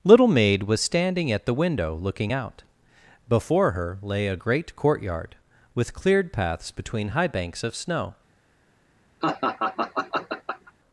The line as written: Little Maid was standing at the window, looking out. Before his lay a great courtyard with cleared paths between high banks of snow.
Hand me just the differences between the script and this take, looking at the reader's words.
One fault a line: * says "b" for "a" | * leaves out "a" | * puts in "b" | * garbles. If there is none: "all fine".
* says "her" for "his"